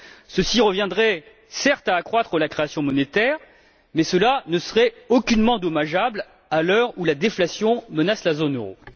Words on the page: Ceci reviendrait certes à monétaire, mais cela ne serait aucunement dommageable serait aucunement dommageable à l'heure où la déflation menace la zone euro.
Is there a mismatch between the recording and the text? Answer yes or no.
yes